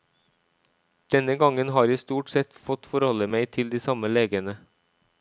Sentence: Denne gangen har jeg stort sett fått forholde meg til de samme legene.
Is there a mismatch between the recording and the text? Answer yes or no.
no